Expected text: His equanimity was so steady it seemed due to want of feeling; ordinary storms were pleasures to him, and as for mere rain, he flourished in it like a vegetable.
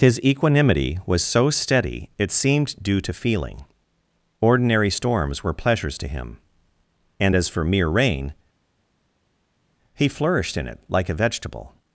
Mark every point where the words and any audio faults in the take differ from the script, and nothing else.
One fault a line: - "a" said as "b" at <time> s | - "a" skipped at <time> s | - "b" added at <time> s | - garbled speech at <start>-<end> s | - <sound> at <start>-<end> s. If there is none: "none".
- "want of" skipped at 3.1 s